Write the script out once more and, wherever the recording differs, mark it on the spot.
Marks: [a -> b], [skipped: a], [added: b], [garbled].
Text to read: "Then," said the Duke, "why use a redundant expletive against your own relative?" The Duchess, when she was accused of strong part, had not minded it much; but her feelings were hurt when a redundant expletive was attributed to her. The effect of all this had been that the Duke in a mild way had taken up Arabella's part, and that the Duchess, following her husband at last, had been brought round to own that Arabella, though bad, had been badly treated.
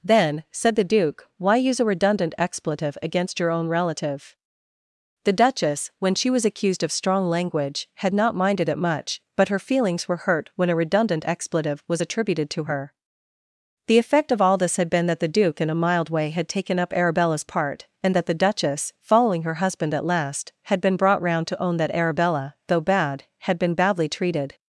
"Then," said the Duke, "why use a redundant expletive against your own relative?" The Duchess, when she was accused of strong [part, -> language] had not minded it much; but her feelings were hurt when a redundant expletive was attributed to her. The effect of all this had been that the Duke in a mild way had taken up Arabella's part, and that the Duchess, following her husband at last, had been brought round to own that Arabella, though bad, had been badly treated.